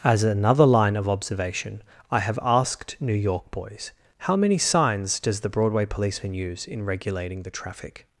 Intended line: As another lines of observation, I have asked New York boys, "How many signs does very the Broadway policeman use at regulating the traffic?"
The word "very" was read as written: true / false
false